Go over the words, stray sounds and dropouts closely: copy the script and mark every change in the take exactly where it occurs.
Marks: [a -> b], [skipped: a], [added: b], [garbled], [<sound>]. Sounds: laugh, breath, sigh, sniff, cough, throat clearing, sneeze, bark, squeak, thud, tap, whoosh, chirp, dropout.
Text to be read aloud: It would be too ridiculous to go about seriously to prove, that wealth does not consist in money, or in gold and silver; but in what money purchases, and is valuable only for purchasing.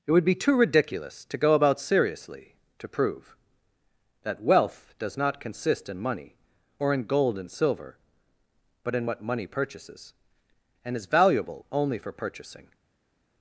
It would be too ridiculous to go about seriously to prove, that wealth does not consist in money, or in gold and silver; but in what money purchases, and is valuable only for purchasing.